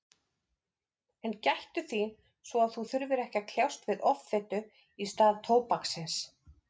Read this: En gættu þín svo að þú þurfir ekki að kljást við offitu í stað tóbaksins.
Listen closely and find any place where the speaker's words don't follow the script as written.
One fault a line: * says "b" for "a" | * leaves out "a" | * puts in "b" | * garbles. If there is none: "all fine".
all fine